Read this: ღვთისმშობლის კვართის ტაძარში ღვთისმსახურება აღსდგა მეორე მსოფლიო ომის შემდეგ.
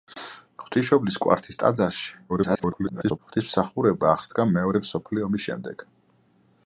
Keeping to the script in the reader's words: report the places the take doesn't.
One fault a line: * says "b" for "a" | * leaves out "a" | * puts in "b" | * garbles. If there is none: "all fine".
* garbles